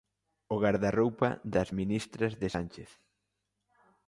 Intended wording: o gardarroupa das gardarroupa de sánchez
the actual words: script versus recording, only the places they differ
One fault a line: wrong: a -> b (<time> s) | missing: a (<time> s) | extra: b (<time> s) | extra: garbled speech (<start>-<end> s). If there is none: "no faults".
wrong: gardarroupa -> ministras (1.8 s)